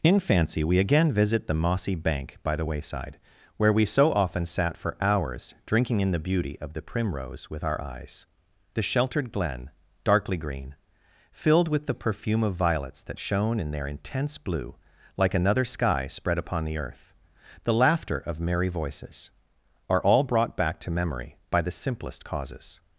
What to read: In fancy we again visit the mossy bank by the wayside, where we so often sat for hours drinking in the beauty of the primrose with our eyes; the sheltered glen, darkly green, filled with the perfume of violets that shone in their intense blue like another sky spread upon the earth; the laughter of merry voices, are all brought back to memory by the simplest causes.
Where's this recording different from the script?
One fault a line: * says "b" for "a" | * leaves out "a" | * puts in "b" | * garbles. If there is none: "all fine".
all fine